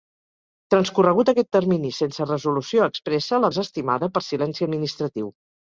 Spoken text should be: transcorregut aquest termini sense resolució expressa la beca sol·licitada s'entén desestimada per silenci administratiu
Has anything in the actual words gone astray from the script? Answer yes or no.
yes